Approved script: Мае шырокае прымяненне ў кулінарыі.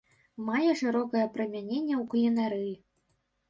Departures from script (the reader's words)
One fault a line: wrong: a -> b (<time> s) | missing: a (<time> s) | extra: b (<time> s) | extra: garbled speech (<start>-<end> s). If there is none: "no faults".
no faults